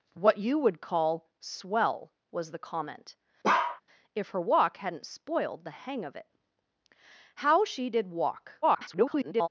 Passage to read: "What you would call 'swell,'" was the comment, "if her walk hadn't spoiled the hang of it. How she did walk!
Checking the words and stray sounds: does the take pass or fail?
fail